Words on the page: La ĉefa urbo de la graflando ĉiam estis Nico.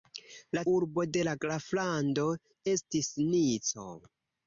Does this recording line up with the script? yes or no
no